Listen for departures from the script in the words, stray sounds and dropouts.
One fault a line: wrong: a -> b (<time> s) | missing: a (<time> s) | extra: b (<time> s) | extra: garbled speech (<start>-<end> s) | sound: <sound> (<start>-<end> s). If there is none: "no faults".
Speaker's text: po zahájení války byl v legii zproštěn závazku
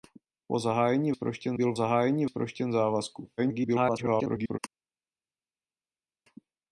wrong: války -> zproštěn (1.1 s)
wrong: legii -> zahájení (1.7 s)
extra: garbled speech (3.4-4.6 s)